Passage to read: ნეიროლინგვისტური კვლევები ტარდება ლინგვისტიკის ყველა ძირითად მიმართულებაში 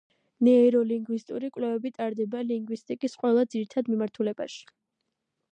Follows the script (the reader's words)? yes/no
yes